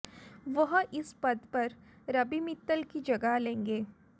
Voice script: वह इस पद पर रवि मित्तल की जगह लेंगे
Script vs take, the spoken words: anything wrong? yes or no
no